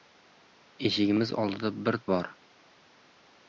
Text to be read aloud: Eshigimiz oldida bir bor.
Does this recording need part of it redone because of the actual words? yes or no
no